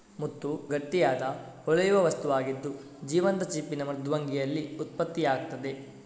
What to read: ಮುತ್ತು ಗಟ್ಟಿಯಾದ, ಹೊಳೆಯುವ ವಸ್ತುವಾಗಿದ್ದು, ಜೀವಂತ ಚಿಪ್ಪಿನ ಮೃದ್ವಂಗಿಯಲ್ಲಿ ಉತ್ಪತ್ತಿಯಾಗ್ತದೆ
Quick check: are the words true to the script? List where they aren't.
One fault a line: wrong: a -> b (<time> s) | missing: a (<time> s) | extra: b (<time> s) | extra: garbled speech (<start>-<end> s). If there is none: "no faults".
no faults